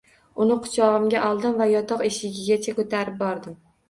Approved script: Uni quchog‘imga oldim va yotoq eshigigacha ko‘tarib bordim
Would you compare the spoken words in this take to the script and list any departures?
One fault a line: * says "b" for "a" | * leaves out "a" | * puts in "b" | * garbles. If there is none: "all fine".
all fine